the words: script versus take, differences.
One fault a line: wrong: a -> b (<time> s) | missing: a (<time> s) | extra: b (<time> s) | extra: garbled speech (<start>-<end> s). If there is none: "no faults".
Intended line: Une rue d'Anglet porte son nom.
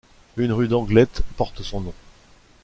no faults